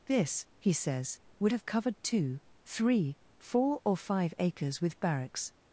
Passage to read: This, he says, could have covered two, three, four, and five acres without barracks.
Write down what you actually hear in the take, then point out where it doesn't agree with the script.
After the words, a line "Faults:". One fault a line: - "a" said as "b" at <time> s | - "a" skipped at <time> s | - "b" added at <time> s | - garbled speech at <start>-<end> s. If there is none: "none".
This, he says, would have covered two, three, four, or five acres with barracks.
Faults:
- "could" said as "would" at 1.4 s
- "and" said as "or" at 3.8 s
- "without" said as "with" at 4.8 s